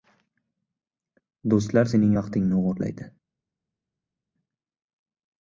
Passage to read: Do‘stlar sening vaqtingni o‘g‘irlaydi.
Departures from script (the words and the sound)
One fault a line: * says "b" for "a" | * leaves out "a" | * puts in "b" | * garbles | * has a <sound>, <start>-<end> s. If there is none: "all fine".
all fine